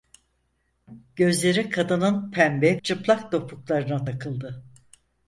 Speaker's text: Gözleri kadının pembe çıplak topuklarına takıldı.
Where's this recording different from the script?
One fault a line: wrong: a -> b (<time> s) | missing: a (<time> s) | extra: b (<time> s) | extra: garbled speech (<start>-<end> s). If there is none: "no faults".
no faults